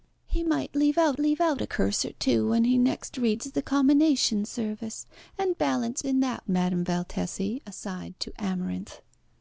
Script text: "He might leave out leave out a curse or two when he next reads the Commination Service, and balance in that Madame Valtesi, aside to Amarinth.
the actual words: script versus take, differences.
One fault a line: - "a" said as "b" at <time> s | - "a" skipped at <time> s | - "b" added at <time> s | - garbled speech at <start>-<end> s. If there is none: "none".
none